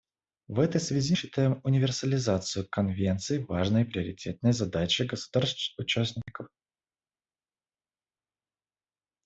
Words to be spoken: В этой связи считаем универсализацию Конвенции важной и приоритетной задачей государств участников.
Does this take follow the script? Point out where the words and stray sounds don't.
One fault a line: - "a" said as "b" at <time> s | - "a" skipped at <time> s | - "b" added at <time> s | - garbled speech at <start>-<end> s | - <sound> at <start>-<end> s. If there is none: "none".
none